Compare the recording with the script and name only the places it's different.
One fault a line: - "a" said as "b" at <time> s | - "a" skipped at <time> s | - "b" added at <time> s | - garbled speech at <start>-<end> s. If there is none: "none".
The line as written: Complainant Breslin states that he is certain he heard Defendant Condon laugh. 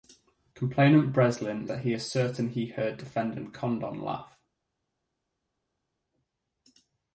- "states" skipped at 1.7 s